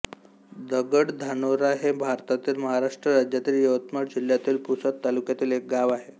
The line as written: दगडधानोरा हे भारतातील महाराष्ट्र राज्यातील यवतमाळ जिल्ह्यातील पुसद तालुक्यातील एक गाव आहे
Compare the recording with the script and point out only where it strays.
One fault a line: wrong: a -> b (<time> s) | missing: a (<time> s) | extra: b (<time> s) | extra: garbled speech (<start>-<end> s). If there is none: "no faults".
no faults